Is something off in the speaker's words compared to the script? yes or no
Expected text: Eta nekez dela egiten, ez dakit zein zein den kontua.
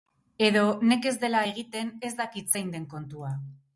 yes